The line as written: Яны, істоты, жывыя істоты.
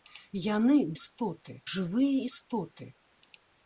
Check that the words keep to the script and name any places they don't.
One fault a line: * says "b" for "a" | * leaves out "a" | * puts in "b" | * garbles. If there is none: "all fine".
all fine